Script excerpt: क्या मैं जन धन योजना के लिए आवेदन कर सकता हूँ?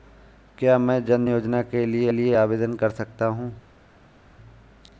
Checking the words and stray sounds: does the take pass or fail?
fail